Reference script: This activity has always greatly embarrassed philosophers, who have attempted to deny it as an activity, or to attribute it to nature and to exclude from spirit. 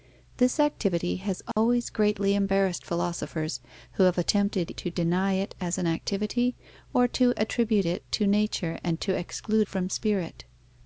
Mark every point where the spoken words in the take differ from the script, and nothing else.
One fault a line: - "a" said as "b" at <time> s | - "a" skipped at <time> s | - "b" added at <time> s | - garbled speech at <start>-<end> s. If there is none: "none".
none